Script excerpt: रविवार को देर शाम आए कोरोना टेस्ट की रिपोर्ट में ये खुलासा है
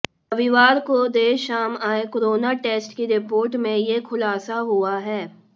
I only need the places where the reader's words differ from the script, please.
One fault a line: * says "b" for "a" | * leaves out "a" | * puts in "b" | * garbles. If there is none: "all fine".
* puts in "हुआ"